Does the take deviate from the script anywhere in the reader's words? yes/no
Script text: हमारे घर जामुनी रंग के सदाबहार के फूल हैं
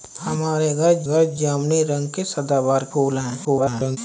yes